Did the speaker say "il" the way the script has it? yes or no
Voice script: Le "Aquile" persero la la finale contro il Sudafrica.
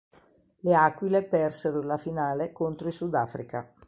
yes